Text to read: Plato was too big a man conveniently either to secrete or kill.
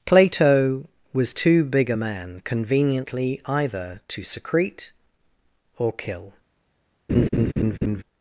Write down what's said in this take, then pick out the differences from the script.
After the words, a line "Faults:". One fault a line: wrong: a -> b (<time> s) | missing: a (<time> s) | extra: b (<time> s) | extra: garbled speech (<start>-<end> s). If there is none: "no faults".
Plato was too big a man conveniently either to secrete or kill.
Faults:
no faults